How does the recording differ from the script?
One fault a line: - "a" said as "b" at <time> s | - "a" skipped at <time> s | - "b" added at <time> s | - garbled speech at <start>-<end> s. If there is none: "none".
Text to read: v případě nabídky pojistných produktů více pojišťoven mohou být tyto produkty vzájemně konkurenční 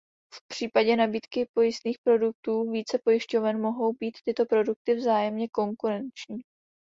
none